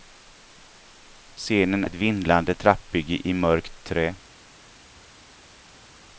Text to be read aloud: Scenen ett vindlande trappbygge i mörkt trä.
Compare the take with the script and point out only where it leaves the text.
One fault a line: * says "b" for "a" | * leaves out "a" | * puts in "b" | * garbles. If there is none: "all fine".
all fine